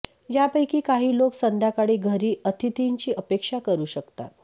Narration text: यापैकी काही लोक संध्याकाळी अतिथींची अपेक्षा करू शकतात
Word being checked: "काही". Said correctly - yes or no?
yes